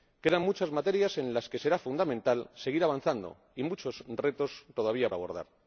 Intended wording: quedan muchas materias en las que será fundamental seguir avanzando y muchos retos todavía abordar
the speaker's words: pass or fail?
pass